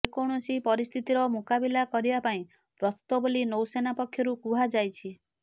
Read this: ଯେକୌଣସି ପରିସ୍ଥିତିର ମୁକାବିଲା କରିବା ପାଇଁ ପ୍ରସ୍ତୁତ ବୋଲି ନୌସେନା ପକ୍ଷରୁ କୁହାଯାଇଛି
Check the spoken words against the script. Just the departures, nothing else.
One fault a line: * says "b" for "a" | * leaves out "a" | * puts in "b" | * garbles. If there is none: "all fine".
all fine